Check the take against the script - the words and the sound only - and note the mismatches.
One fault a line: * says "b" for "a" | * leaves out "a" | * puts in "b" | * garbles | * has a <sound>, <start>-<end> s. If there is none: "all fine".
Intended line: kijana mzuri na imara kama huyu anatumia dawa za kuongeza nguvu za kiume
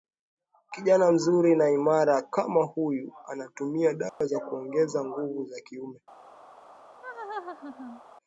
* has a dropout, 4.1-4.2 s
* has a laugh, 7.0-8.0 s